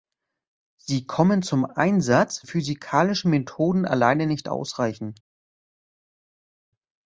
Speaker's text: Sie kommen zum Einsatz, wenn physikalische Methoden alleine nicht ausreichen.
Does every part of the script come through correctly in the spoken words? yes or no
no